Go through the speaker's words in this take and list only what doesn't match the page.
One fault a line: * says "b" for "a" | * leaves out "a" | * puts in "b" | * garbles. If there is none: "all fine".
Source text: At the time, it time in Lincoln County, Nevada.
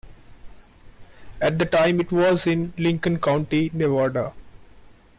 * says "was" for "time"